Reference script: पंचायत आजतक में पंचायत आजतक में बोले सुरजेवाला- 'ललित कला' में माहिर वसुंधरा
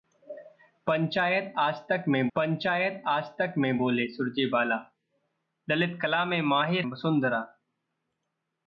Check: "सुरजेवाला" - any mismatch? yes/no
no